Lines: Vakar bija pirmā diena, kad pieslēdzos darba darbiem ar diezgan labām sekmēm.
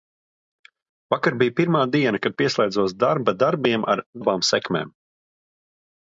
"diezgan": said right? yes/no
no